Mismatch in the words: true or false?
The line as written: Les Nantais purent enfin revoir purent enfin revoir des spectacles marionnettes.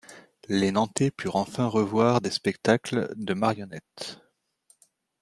true